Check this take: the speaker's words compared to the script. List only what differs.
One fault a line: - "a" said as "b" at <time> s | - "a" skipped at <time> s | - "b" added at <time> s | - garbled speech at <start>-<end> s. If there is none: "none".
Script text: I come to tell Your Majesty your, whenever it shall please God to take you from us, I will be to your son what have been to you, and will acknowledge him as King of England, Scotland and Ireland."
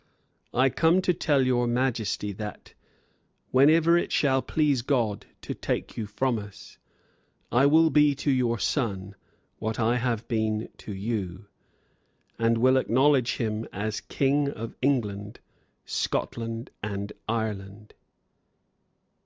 - "your" said as "that" at 2.3 s
- "I" added at 9.8 s